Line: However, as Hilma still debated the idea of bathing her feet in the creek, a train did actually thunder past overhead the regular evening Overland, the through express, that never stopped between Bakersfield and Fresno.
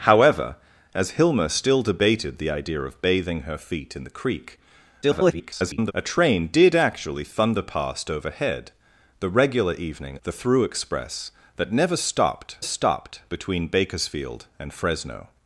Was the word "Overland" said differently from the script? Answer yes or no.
yes